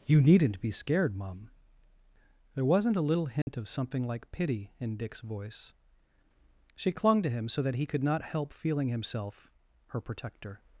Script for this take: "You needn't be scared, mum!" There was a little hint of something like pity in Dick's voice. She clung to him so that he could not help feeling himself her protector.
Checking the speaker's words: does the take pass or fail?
fail